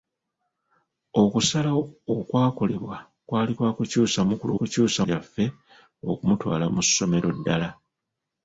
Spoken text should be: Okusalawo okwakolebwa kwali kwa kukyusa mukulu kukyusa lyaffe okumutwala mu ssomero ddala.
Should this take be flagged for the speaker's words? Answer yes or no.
no